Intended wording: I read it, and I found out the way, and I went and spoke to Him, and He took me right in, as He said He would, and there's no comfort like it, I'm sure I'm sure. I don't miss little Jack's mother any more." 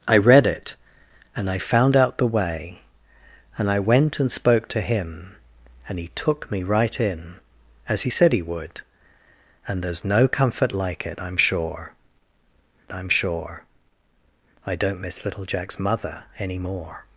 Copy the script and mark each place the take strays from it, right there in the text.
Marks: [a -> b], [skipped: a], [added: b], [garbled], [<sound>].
I read it, and I found out the way, and I went and spoke to Him, and He took me right in, as He said He would, and there's no comfort like it, I'm sure I'm sure. I don't miss little Jack's mother any more."